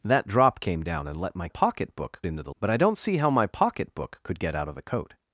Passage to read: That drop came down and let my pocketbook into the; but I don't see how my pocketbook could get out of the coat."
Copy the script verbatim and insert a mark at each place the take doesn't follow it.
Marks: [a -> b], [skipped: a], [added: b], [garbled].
That drop came down and let my pocketbook into the; but I don't see how my pocketbook could get out of the coat."